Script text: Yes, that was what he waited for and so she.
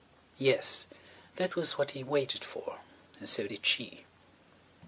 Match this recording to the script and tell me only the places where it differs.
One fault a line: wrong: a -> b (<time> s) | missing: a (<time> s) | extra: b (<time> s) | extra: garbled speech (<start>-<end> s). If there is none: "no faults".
extra: did (3.4 s)